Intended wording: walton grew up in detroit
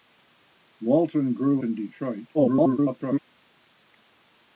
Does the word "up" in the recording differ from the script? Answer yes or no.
yes